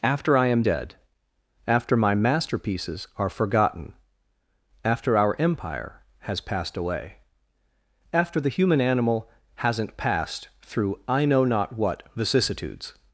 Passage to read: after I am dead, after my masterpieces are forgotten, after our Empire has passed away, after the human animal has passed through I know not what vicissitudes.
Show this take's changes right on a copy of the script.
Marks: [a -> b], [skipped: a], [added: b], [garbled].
after I am dead, after my masterpieces are forgotten, after our Empire has passed away, after the human animal [has -> hasn't] passed through I know not what vicissitudes.